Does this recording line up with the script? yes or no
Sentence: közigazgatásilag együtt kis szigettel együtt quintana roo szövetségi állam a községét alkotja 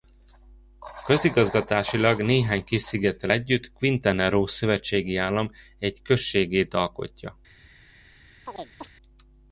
no